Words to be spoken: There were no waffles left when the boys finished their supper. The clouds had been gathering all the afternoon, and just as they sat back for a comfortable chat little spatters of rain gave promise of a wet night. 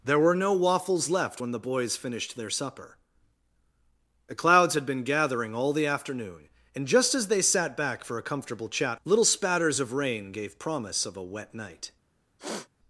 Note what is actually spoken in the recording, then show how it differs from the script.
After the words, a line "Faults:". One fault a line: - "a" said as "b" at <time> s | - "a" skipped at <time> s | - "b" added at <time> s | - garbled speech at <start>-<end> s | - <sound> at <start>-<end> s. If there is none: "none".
There were no waffles left when the boys finished their supper. The clouds had been gathering all the afternoon, and just as they sat back for a comfortable chat little spatters of rain gave promise of a wet night.
Faults:
- sniff at 12.4-12.7 s